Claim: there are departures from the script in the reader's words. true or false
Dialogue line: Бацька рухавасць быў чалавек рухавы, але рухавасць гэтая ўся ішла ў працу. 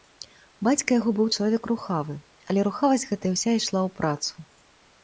true